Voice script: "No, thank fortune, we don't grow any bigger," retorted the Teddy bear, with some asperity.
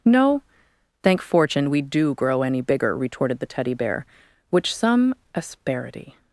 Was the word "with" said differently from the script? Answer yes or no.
yes